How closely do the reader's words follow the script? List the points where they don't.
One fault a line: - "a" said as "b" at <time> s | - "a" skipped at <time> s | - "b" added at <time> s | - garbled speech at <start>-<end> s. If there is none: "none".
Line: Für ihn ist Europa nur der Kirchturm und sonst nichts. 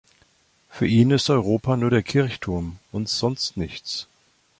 none